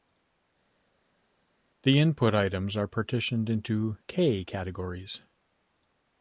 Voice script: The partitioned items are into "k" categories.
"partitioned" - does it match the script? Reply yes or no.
no